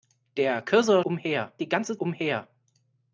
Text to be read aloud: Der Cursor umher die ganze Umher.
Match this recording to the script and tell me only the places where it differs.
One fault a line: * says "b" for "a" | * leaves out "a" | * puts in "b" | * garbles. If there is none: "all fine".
all fine